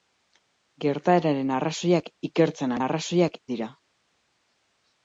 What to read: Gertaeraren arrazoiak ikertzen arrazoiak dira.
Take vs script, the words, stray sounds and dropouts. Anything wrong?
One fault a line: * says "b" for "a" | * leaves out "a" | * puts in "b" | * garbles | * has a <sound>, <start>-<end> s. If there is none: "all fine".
all fine